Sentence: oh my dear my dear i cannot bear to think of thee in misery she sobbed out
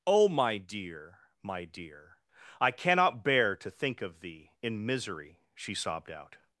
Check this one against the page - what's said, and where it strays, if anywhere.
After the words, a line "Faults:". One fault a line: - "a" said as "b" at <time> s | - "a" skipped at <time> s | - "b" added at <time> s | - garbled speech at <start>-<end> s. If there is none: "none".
oh my dear my dear i cannot bear to think of thee in misery she sobbed out
Faults:
none